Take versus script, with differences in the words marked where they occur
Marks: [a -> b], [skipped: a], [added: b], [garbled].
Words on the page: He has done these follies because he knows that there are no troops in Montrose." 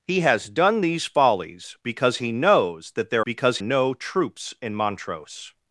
He has done these follies because he knows that there [are -> because] no troops in Montrose."